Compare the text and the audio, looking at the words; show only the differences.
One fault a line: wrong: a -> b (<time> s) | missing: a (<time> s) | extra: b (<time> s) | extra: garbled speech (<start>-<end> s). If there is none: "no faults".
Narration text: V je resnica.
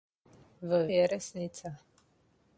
no faults